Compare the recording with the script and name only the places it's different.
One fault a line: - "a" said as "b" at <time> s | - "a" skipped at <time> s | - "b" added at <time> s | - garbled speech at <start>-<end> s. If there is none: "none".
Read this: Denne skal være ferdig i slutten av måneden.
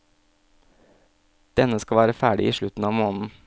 none